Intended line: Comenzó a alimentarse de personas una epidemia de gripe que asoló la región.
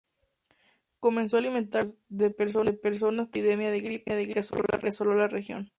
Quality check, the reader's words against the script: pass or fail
fail